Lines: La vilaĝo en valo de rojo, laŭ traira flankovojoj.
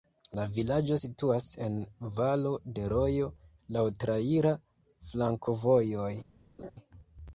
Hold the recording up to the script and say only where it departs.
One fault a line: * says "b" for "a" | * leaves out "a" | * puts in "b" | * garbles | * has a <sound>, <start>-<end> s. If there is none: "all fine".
* puts in "situas"
* has a laugh, 6.6-6.7 s